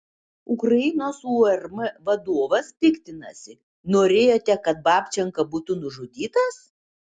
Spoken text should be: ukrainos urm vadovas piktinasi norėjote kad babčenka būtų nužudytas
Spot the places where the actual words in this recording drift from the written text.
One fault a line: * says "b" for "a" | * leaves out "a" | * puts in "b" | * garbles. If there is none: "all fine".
all fine